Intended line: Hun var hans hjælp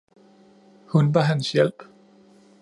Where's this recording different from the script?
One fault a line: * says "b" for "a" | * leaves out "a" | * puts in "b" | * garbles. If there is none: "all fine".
all fine